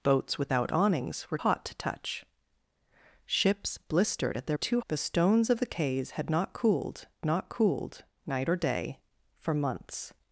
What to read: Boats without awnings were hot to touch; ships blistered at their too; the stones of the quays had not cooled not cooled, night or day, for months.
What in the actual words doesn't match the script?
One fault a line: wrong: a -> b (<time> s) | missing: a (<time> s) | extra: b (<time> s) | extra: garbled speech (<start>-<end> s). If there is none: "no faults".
no faults